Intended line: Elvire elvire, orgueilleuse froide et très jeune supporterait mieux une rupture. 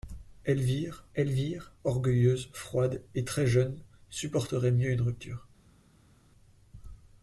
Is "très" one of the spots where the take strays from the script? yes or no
no